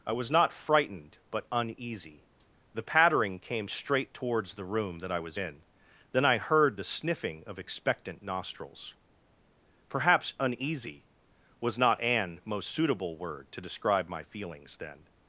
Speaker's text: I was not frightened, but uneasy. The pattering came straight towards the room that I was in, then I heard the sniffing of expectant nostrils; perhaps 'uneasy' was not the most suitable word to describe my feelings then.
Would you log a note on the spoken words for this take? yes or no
yes